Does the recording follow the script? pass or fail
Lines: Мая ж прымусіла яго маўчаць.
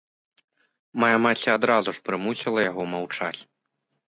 fail